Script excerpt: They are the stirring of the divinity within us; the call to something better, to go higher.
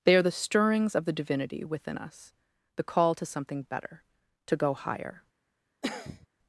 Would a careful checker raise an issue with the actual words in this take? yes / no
yes